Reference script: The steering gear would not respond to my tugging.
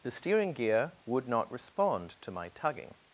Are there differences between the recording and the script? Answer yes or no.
no